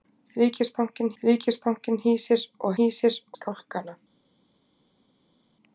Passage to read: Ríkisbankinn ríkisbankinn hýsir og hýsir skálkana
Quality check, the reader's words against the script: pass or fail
pass